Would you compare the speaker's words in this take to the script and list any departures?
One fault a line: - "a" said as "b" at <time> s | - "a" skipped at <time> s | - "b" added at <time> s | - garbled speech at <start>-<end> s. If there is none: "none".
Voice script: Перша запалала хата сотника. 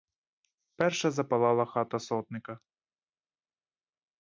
none